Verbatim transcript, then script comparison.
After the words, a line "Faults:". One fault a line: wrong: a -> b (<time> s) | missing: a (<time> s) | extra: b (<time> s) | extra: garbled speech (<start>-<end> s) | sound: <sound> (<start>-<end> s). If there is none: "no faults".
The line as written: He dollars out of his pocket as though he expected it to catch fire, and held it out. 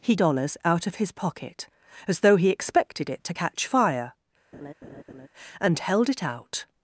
He dollars out of his pocket as though he expected it to catch fire, and held it out.
Faults:
sound: laugh (4.5-5.3 s)